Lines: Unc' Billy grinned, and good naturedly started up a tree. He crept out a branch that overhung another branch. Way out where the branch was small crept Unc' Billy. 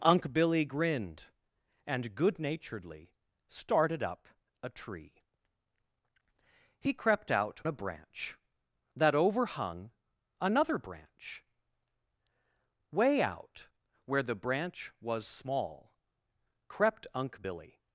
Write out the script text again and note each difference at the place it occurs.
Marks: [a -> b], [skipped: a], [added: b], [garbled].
Unc' Billy grinned, and good naturedly started up a tree. He crept out a branch that overhung another branch. Way out where the branch was small crept Unc' Billy.